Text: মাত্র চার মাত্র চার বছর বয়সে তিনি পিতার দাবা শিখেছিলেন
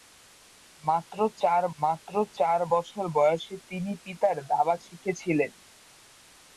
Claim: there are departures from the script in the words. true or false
false